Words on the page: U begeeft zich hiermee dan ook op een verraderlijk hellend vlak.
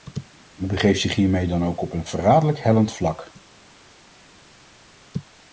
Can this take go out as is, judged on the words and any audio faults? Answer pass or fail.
pass